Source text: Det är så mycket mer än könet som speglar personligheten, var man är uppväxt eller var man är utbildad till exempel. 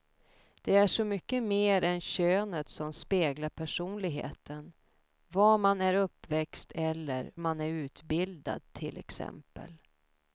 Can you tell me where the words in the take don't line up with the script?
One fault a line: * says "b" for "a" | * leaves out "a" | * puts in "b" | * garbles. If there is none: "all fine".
* leaves out "var"